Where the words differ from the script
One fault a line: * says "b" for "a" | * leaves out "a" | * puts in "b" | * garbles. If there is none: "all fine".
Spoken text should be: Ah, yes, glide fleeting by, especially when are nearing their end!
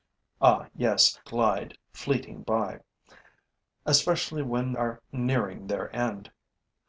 all fine